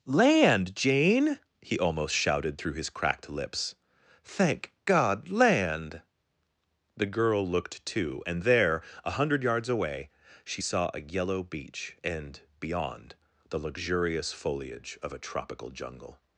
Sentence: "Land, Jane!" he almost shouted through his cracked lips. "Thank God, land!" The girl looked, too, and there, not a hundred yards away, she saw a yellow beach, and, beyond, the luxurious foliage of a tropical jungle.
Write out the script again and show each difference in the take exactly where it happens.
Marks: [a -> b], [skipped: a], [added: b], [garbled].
"Land, Jane!" he almost shouted through his cracked lips. "Thank God, land!" The girl looked, too, and there, [skipped: not] a hundred yards away, she saw a yellow beach, and, beyond, the luxurious foliage of a tropical jungle.